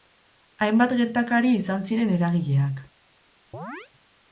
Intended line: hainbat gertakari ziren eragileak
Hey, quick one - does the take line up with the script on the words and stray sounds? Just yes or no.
no